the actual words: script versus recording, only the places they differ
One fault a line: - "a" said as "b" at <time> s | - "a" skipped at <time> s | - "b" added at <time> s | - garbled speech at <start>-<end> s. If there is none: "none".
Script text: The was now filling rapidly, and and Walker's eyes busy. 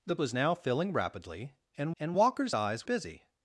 none